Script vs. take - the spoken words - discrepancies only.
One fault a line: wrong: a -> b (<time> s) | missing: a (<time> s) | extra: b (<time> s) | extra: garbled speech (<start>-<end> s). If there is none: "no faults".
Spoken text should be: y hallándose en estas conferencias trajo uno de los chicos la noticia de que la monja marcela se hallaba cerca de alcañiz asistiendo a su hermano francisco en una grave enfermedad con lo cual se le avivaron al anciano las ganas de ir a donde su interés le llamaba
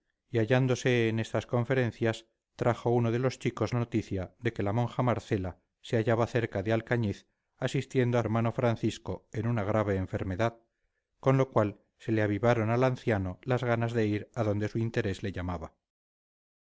missing: la (3.8 s)
missing: su (8.2 s)